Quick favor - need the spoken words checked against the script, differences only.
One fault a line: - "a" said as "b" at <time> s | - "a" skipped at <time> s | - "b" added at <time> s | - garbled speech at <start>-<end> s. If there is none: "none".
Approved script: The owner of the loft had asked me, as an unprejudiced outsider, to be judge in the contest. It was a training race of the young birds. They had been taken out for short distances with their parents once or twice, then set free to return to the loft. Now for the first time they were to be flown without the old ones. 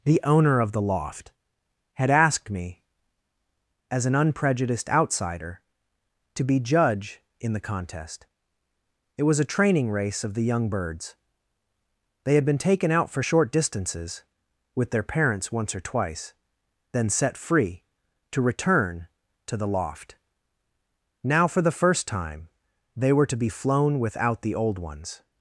none